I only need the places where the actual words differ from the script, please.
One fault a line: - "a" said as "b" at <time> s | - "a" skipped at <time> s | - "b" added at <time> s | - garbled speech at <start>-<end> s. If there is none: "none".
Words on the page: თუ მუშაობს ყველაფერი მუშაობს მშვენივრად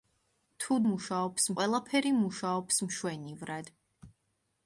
none